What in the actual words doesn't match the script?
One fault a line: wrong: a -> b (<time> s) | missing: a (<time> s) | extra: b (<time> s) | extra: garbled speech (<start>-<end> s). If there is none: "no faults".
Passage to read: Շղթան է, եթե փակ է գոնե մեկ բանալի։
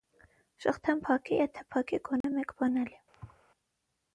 extra: փակ (1.1 s)